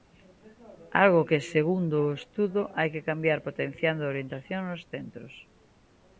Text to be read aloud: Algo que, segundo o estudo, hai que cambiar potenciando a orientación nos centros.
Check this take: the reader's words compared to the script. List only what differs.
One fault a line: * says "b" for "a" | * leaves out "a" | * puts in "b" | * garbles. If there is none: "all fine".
all fine